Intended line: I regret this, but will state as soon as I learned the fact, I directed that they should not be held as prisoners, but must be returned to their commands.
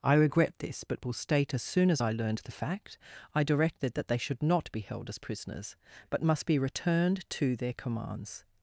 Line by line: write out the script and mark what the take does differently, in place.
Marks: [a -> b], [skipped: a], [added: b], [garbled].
I regret this, but will state as soon as I learned the fact, I directed that they should not be held as prisoners, but must be returned to their commands.